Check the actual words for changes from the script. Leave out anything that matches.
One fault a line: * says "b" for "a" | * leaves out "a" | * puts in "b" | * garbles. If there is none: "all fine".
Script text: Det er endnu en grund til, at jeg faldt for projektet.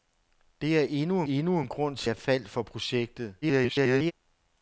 * puts in "endnu"
* leaves out "at"
* garbles